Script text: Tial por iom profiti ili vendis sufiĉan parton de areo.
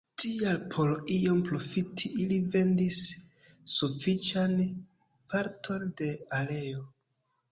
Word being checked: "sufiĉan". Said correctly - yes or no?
yes